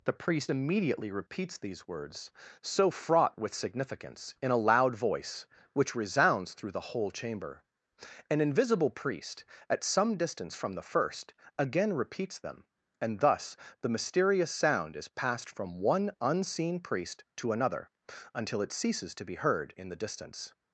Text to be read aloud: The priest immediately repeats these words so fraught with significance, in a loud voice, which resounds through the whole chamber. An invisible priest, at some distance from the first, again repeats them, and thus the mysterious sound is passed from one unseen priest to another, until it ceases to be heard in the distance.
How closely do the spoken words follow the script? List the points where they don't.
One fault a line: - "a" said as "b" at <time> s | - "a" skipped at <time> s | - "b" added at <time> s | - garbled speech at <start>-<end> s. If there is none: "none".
none